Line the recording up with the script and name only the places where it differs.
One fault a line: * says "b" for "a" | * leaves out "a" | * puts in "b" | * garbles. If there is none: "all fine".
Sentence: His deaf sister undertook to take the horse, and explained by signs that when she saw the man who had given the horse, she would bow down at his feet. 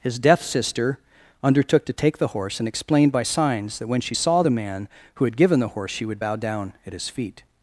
all fine